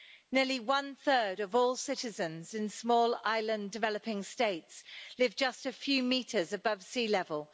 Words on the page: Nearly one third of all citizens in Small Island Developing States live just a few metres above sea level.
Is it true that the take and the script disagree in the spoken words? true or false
false